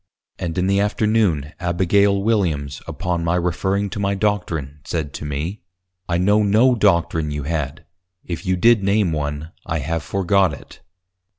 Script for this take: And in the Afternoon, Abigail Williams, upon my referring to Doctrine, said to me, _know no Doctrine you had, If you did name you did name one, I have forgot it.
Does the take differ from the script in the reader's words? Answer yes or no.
yes